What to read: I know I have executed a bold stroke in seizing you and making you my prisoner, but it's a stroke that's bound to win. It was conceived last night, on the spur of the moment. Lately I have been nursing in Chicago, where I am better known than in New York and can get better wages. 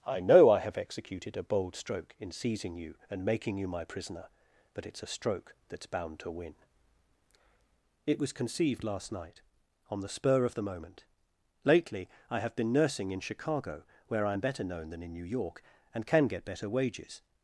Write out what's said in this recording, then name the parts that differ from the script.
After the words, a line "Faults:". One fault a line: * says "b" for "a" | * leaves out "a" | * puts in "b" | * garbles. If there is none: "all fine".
I know I have executed a bold stroke in seizing you and making you my prisoner, but it's a stroke that's bound to win. It was conceived last night, on the spur of the moment. Lately I have been nursing in Chicago, where I am better known than in New York and can get better wages.
Faults:
all fine